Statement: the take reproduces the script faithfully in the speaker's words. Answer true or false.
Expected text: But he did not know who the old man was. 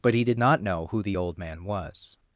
true